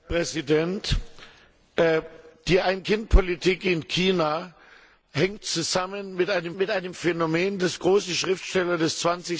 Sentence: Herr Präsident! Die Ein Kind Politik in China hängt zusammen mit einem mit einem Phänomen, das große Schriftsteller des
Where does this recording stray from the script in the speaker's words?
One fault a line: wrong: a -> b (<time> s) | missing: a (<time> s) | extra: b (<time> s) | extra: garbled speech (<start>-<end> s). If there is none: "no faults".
no faults